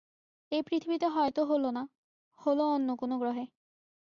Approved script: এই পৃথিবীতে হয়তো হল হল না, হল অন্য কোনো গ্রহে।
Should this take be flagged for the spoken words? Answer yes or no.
yes